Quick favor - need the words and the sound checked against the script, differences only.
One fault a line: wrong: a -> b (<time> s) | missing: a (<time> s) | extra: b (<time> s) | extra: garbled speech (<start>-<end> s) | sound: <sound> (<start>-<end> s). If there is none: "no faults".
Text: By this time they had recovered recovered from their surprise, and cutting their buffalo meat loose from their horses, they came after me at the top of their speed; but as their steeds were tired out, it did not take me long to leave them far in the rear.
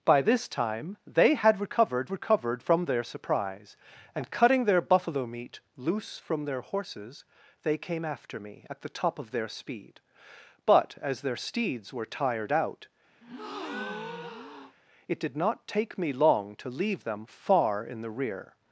sound: breath (13.2-14.7 s)